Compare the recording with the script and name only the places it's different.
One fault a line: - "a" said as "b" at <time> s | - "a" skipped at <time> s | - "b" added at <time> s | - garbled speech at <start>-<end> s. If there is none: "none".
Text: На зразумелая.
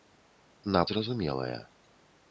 none